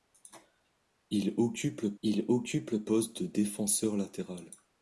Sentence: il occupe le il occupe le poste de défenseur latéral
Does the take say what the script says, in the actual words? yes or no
yes